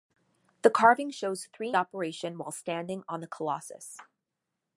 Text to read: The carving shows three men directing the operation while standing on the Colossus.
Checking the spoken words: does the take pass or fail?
fail